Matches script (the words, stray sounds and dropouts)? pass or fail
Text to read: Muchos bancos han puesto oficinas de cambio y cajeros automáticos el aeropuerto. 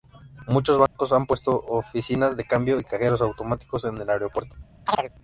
fail